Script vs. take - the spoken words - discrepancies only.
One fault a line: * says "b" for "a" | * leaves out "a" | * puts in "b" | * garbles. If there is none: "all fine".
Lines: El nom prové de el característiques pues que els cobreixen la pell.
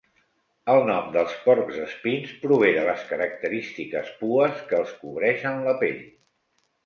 * puts in "dels porcs espins"
* says "les" for "el"